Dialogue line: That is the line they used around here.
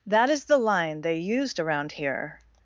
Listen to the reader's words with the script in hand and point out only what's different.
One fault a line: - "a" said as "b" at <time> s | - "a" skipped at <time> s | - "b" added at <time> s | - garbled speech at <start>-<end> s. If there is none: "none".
none